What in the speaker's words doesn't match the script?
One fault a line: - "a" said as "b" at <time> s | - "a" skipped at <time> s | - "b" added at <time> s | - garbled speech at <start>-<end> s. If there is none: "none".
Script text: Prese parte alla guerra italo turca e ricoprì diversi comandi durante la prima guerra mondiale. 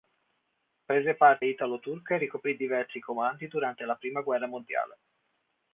- "alla guerra" skipped at 1.4 s